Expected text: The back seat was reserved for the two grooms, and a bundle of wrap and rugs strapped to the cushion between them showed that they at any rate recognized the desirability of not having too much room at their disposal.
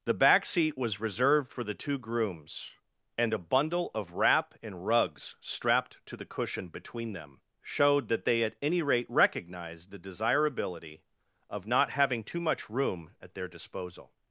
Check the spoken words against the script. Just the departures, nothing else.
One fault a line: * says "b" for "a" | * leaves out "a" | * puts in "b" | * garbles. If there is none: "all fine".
all fine